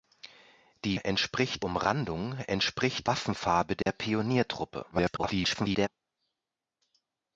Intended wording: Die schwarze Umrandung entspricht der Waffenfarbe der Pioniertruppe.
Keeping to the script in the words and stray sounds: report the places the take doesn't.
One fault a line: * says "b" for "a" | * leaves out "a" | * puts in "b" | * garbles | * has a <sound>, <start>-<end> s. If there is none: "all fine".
* says "entspricht" for "schwarze"
* leaves out "der"
* has a dropout, 3.8-3.9 s
* garbles